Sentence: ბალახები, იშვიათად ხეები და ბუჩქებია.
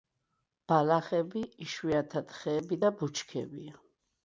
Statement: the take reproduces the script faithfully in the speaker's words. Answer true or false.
true